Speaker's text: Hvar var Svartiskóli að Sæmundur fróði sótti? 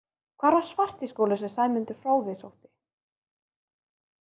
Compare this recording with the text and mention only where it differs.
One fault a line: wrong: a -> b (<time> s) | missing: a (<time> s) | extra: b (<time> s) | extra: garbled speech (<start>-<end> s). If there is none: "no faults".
wrong: að -> sem (1.4 s)